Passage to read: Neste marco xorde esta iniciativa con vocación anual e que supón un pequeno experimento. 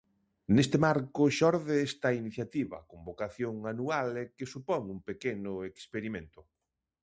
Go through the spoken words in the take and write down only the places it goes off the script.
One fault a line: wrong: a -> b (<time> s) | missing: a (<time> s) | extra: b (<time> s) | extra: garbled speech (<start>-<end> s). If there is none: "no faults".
no faults